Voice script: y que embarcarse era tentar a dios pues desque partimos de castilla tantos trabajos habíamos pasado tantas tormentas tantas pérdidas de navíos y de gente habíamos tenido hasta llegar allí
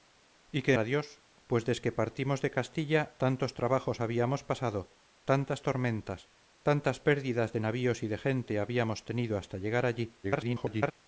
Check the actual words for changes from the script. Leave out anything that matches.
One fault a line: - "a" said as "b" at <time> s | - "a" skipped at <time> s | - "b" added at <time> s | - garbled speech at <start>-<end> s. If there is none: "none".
- "embarcarse era tentar" skipped at 0.7 s
- garbled speech at 10.2-10.9 s